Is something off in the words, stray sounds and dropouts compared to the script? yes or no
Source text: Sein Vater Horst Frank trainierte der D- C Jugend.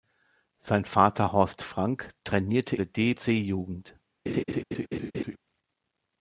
yes